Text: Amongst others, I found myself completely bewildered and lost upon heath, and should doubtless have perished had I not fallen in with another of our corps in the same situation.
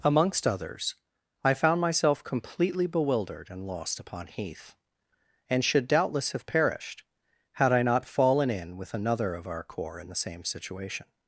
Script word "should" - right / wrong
right